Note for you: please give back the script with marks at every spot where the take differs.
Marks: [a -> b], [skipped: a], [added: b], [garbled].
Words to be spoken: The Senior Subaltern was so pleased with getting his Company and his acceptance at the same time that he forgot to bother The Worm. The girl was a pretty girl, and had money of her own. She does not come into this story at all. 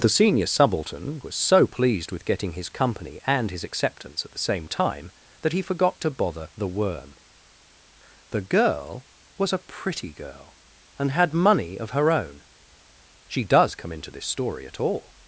The Senior Subaltern was so pleased with getting his Company and his acceptance at the same time that he forgot to bother The Worm. The girl was a pretty girl, and had money of her own. She does [skipped: not] come into this story at all.